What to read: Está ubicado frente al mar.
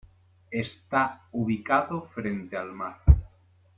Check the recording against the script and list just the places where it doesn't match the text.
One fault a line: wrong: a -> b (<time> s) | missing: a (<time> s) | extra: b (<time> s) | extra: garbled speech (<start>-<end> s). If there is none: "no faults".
no faults